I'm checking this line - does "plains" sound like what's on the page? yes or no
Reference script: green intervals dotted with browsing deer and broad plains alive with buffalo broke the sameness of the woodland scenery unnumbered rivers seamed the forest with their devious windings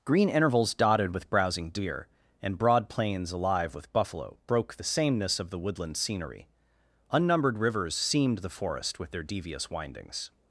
yes